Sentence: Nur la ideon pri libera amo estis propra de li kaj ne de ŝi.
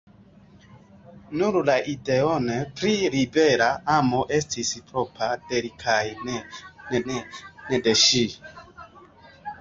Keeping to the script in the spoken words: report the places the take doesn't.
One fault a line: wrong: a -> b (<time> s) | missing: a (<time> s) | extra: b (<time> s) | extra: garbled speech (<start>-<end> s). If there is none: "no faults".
extra: ne (7.1 s)